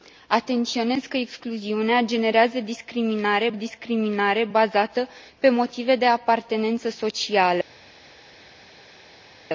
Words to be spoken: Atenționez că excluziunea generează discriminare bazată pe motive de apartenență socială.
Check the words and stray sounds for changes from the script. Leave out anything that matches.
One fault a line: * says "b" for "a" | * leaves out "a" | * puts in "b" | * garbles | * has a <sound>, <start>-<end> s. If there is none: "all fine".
* puts in "discriminare"